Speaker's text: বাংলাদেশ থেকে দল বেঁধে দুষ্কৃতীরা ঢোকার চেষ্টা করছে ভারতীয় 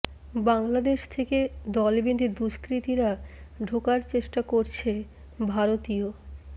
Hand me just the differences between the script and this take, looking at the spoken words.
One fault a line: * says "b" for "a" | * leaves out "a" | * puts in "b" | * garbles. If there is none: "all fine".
all fine